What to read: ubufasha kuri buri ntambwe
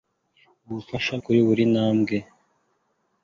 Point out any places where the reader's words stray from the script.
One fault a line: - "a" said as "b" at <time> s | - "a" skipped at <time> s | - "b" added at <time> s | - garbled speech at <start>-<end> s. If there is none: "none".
none